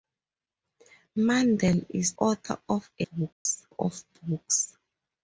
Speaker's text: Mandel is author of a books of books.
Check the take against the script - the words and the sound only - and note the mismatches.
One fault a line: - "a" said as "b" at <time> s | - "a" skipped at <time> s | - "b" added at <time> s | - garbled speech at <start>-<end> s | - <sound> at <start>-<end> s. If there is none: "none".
- dropout at 3.3-3.5 s